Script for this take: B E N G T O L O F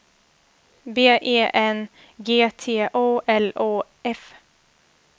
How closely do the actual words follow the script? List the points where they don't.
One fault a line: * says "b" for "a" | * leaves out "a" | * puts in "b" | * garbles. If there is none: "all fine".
all fine